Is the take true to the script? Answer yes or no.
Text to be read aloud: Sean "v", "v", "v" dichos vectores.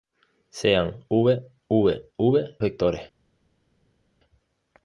no